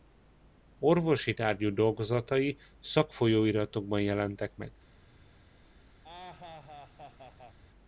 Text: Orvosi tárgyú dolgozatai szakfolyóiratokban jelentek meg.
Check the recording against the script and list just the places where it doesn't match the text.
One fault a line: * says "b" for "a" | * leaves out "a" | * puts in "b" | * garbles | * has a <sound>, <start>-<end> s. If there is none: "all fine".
* has a laugh, 6.0-7.6 s